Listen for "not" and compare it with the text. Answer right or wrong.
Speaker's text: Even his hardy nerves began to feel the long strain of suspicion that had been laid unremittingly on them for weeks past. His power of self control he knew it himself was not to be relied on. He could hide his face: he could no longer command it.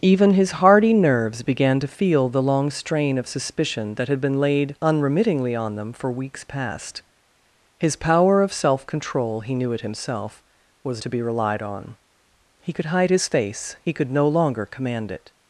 wrong